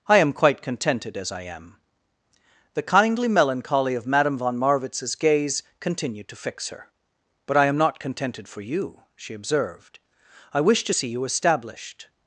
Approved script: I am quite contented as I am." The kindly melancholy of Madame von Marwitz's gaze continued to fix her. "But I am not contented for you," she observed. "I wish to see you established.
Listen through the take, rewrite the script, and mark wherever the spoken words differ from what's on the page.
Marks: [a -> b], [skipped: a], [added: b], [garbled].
I am quite contented as I am." The kindly melancholy of Madame von Marwitz's gaze continued to fix her. "But I am not contented for you," she observed. "I wish to see you established.